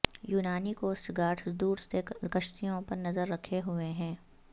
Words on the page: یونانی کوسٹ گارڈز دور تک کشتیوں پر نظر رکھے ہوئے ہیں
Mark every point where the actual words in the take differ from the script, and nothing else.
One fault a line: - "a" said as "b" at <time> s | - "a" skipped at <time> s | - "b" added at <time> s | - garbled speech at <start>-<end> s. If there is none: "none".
- "تک" said as "سے" at 1.8 s